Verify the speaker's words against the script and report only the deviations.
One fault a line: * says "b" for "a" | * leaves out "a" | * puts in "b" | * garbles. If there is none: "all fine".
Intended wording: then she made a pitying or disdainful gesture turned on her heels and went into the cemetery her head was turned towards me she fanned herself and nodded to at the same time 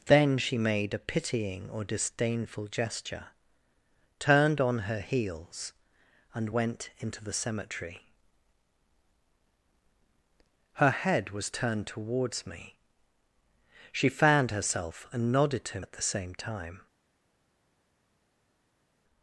all fine